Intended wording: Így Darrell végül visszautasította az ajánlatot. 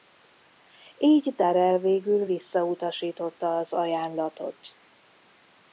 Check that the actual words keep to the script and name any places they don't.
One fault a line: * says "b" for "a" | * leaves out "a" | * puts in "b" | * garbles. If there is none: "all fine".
all fine